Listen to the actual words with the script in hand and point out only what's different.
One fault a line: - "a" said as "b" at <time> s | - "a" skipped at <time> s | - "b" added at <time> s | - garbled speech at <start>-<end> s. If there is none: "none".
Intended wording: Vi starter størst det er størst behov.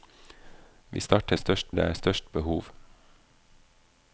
none